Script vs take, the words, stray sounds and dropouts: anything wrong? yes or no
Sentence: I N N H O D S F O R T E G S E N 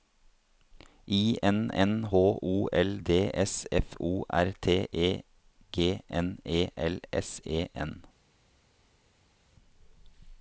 yes